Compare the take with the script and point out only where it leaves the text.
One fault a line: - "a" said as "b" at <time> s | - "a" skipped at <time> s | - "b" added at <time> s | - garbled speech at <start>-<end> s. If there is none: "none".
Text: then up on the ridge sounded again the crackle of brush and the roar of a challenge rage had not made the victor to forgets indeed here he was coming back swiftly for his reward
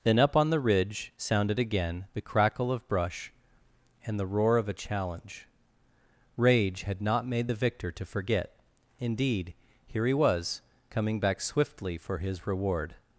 - "forgets" said as "forget" at 8.1 s